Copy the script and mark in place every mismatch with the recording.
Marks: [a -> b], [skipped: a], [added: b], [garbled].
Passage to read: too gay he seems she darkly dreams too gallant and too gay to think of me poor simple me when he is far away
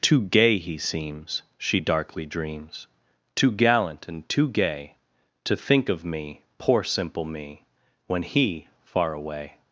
too gay he seems she darkly dreams too gallant and too gay to think of me poor simple me when he [skipped: is] far away